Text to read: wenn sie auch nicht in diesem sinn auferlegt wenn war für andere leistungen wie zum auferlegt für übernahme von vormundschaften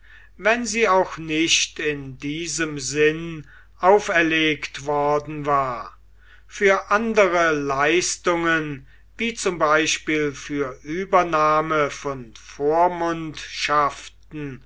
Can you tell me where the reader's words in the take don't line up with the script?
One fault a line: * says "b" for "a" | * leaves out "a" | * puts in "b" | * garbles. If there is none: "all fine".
* says "worden" for "wenn"
* says "beispiel" for "auferlegt"